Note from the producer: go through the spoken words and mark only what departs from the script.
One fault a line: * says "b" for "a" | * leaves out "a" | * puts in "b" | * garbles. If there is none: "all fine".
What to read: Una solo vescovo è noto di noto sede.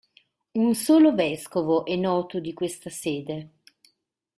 * says "Un" for "Una"
* says "questa" for "noto"